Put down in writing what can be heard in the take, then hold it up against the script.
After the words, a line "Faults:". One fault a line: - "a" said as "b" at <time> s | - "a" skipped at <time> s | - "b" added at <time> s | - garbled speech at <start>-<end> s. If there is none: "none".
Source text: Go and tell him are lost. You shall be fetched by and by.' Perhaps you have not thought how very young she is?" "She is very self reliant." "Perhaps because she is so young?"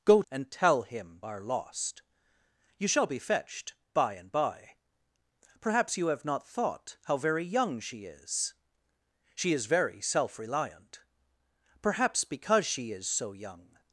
Go and tell him are lost. You shall be fetched by and by.' Perhaps you have not thought how very young she is?" "She is very self reliant." "Perhaps because she is so young?"
Faults:
none